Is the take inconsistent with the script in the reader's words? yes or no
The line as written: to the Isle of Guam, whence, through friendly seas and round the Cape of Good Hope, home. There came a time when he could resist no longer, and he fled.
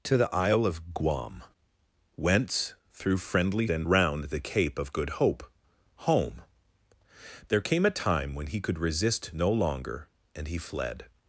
yes